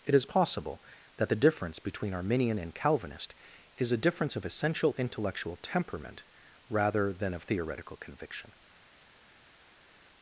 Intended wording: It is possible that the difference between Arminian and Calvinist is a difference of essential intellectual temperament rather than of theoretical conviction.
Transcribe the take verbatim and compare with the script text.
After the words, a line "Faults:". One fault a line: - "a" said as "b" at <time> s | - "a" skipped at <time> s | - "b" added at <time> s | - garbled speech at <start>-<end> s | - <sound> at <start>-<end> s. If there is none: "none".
It is possible that the difference between Arminian and Calvinist is a difference of essential intellectual temperament rather than of theoretical conviction.
Faults:
none